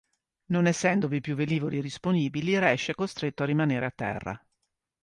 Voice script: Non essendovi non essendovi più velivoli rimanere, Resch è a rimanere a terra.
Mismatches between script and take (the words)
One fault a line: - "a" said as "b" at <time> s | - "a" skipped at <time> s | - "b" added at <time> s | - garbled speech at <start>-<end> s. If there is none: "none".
- "non essendovi" skipped at 1.2 s
- "rimanere" said as "disponibili" at 1.8 s
- "costretto" added at 3.0 s